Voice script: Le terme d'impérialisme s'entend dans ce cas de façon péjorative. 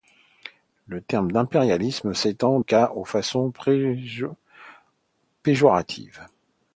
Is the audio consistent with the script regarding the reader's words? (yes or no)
no